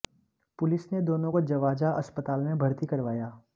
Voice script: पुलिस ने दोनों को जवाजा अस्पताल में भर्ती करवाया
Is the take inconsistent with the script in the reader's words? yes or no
no